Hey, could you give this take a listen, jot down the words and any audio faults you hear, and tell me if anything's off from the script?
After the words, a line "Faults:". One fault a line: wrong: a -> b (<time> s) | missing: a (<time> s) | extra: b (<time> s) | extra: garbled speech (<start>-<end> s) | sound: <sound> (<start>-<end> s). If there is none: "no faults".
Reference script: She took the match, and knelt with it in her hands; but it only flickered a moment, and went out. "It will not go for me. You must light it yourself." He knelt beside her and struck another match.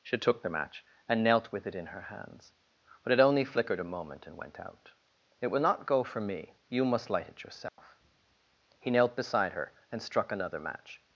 She took the match, and knelt with it in her hands; but it only flickered a moment, and went out. "It will not go for me. You must light it yourself." He knelt beside her and struck another match.
Faults:
sound: dropout (7.7-7.8 s)